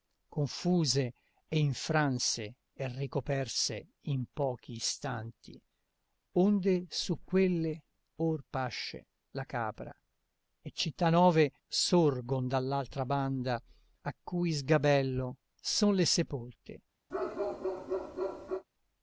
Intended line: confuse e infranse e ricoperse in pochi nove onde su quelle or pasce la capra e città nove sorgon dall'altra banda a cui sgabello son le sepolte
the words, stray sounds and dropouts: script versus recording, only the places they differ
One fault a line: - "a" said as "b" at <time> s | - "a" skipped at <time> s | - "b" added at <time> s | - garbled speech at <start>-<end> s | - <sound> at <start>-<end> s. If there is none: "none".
- "nove" said as "istanti" at 4.7 s
- bark at 17.1-18.6 s